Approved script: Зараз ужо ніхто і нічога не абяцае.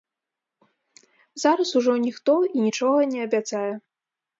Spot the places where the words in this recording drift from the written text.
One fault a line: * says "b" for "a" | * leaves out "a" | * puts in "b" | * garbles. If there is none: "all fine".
all fine